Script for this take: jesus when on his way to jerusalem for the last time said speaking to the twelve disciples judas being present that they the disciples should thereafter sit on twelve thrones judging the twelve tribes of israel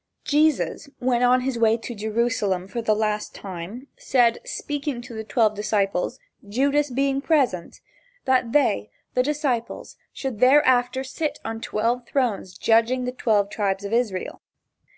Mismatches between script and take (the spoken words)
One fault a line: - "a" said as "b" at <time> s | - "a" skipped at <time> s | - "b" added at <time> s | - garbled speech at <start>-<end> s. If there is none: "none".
none